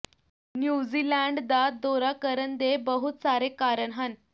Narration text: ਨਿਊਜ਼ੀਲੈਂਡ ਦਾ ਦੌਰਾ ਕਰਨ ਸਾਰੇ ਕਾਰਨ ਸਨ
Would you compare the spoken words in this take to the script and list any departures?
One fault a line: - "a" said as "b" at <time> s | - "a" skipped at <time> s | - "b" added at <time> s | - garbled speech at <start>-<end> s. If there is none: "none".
- "ਦੇ ਬਹੁਤ" added at 2.6 s
- "ਸਨ" said as "ਹਨ" at 3.9 s